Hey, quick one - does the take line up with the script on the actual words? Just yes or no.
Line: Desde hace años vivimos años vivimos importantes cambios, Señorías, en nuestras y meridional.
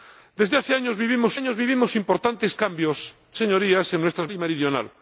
yes